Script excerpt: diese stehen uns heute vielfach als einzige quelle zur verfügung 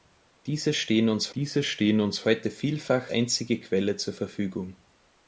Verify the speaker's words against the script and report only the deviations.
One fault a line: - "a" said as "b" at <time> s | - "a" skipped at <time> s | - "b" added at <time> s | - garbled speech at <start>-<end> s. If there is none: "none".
- "diese stehen uns" added at 1.4 s
- "als" skipped at 3.1 s